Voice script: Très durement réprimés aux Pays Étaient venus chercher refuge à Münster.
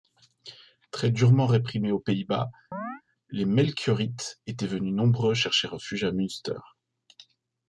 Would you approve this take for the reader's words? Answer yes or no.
no